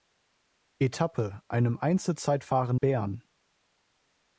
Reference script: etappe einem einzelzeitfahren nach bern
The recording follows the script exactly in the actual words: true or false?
false